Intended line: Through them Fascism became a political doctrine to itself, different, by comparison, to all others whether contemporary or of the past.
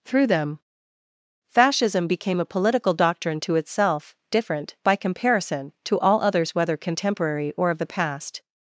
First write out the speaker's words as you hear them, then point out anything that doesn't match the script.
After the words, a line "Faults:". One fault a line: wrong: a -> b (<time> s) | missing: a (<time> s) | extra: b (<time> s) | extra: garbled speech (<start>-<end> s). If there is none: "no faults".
Through them Fascism became a political doctrine to itself, different, by comparison, to all others whether contemporary or of the past.
Faults:
no faults